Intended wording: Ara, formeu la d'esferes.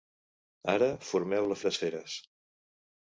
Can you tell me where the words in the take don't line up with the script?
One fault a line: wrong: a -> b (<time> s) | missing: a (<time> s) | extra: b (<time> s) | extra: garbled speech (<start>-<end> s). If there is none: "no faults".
no faults